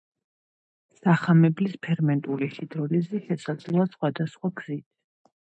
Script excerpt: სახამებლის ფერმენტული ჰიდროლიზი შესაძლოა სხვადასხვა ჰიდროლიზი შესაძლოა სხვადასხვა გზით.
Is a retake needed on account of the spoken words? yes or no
yes